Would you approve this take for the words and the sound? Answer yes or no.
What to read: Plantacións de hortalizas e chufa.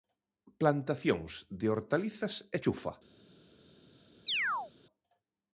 no